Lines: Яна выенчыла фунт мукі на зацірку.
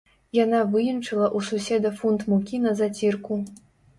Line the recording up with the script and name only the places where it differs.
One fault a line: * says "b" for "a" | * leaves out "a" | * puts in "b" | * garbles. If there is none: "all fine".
* puts in "ў суседа"